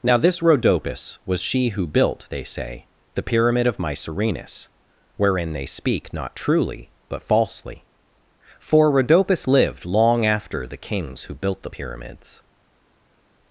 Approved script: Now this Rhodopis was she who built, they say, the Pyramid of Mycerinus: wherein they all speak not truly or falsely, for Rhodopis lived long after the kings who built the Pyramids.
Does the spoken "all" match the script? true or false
false